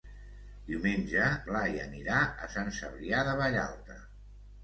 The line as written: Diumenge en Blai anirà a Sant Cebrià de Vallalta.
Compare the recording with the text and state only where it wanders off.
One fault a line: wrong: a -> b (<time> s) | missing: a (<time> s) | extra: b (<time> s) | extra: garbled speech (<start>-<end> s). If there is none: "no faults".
missing: en (1.3 s)